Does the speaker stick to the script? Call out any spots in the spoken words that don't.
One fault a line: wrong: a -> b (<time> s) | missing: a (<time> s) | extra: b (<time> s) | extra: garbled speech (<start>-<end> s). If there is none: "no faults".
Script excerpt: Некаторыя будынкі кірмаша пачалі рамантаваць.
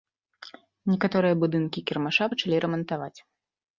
no faults